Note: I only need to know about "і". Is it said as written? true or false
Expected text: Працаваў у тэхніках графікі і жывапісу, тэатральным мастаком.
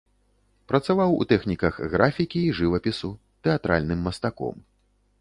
true